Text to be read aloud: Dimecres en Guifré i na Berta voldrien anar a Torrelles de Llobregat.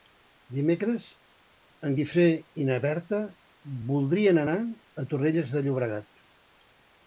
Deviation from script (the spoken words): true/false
false